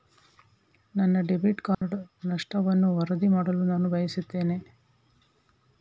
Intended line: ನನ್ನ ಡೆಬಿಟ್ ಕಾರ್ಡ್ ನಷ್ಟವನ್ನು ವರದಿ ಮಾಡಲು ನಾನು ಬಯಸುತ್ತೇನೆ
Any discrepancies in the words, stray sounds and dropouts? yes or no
yes